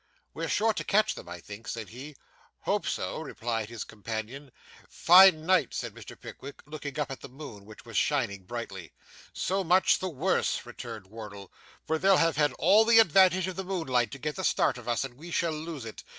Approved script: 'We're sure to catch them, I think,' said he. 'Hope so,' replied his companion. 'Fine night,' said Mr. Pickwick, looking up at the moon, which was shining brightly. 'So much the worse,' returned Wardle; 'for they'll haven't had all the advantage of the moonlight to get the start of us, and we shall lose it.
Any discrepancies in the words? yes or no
yes